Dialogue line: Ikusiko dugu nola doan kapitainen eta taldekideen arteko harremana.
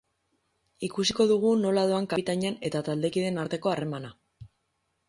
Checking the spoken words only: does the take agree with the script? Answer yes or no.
yes